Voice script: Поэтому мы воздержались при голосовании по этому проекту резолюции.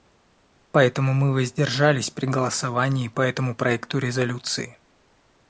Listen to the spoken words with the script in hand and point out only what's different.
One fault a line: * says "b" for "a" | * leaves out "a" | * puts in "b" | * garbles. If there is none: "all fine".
all fine